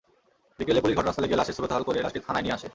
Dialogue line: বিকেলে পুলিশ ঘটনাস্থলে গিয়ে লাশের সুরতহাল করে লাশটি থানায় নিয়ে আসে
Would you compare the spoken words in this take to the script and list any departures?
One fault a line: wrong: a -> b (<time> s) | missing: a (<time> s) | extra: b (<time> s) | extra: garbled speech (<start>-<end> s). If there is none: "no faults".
no faults